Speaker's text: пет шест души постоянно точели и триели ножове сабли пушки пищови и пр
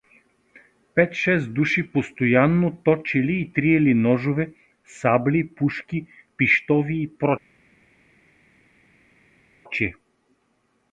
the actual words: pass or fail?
pass